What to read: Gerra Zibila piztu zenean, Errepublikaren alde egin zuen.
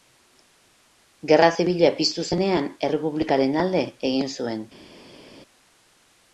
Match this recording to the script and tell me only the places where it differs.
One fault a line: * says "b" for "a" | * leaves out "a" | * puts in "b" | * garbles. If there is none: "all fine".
all fine